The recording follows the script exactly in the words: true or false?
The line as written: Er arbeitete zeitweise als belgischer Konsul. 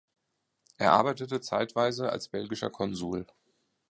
true